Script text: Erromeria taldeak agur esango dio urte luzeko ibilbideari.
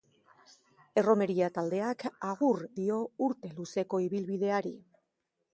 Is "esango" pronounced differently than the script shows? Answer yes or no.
yes